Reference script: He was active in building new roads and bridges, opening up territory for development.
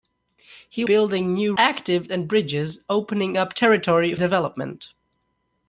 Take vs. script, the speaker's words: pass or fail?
fail